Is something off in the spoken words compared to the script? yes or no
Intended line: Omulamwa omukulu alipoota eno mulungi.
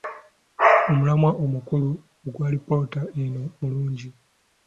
yes